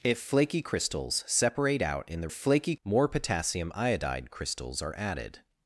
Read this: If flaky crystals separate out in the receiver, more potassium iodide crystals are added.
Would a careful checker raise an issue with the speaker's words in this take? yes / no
yes